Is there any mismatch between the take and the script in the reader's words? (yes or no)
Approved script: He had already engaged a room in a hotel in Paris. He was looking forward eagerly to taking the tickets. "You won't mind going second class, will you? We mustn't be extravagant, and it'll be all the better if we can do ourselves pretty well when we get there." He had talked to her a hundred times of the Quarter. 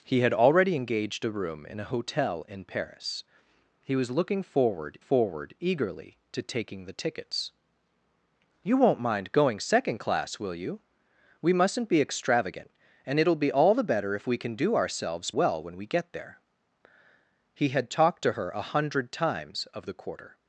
yes